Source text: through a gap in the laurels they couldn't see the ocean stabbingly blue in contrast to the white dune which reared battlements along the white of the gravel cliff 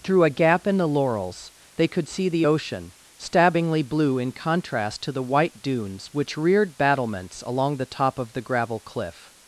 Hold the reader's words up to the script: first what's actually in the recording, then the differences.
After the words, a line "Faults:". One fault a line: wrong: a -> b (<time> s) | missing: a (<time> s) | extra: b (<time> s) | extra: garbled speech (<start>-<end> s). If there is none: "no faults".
through a gap in the laurels they could see the ocean stabbingly blue in contrast to the white dunes which reared battlements along the top of the gravel cliff
Faults:
wrong: couldn't -> could (1.9 s)
wrong: dune -> dunes (5.6 s)
wrong: white -> top (7.8 s)